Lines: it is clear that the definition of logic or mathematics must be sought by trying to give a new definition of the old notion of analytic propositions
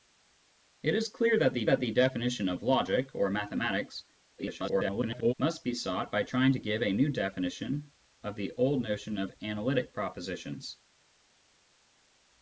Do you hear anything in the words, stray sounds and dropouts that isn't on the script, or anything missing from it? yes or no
yes